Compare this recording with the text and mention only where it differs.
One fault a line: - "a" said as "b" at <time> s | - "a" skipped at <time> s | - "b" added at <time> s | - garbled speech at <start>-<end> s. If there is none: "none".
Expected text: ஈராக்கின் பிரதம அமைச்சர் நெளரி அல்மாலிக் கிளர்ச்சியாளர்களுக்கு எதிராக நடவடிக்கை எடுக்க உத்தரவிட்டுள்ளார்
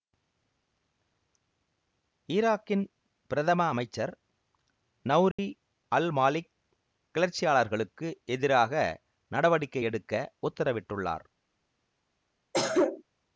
none